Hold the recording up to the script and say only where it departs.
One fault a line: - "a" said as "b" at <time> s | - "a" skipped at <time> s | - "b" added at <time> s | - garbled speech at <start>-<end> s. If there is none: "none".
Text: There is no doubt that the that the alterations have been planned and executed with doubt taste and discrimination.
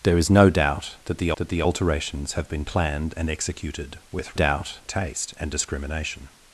none